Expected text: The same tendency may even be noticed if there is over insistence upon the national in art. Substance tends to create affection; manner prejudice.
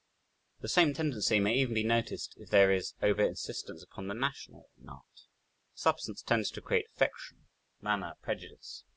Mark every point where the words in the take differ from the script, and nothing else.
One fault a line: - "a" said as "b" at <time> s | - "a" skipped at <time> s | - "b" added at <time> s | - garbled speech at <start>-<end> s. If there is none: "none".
none